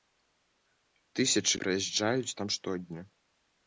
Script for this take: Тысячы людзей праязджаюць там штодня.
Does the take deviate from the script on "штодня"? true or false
false